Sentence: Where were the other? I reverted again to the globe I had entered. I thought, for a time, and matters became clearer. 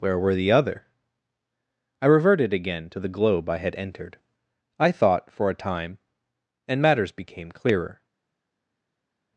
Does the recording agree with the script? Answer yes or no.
yes